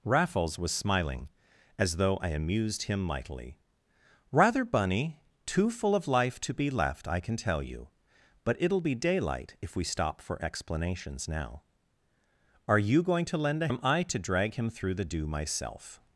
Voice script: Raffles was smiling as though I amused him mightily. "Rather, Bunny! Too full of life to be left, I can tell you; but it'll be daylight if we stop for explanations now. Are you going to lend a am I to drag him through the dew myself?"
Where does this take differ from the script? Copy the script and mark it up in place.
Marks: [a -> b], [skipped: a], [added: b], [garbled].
Raffles was smiling as though I amused him mightily. "Rather, Bunny! Too full of life to be left, I can tell you; but it'll be daylight if we stop for explanations now. Are you going to lend a am I to drag him through the dew myself?"